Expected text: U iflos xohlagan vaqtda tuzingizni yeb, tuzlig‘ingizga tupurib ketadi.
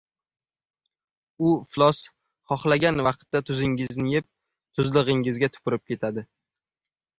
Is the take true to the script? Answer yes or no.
yes